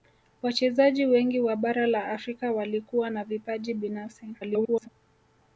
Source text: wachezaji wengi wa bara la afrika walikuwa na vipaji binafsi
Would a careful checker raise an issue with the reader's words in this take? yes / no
yes